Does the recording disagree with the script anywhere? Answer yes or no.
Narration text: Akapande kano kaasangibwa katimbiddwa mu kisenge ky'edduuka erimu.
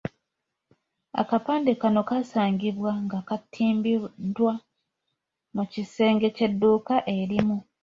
yes